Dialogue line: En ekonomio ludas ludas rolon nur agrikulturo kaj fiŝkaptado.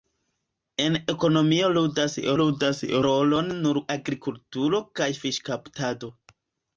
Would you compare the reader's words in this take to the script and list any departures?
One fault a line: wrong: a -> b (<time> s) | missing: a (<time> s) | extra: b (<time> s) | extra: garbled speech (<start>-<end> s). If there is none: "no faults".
no faults